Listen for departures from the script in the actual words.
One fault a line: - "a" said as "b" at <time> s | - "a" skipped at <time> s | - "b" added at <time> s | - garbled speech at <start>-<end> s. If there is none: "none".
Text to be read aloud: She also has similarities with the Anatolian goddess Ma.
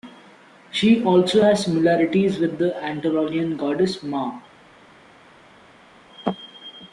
none